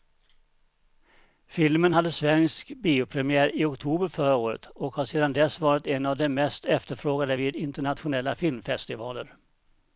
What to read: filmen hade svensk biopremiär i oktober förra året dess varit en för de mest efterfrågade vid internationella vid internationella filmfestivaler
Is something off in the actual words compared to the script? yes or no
yes